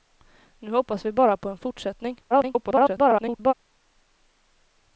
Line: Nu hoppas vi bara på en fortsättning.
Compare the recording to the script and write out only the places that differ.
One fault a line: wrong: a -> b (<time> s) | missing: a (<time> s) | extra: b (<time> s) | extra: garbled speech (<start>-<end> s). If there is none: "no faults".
extra: garbled speech (2.3-3.5 s)